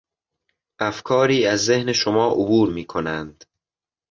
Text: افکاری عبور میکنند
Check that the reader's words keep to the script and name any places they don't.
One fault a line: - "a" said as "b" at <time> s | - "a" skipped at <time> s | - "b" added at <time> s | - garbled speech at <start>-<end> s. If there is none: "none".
- "از ذهن شما" added at 1.4 s